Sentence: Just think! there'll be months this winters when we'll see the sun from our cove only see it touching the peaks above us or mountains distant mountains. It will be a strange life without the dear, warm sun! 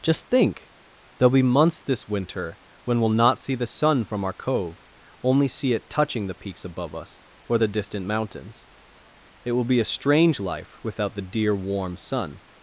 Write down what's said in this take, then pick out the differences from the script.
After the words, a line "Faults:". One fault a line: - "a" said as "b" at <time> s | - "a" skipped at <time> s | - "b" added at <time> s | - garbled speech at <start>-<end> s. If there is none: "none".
Just think! there'll be months this winter when we'll not see the sun from our cove only see it touching the peaks above us or the distant mountains. It will be a strange life without the dear, warm sun!
Faults:
- "winters" said as "winter" at 2.1 s
- "not" added at 3.1 s
- "mountains" said as "the" at 7.5 s